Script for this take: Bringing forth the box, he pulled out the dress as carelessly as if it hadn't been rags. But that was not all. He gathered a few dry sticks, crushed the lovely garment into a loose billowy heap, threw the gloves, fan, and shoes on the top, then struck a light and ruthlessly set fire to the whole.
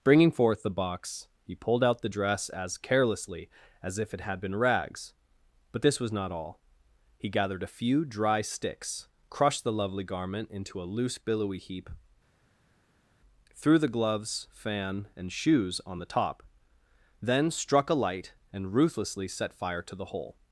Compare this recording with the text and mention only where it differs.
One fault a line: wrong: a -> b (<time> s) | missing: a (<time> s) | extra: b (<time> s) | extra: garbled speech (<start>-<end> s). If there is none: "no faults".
wrong: hadn't -> had (4.2 s)
wrong: that -> this (5.8 s)